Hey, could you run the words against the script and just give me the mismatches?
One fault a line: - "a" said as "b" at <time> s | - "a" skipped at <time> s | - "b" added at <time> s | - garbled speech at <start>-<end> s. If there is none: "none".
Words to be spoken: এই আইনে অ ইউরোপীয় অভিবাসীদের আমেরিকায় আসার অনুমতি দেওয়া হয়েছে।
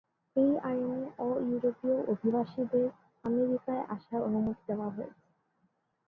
none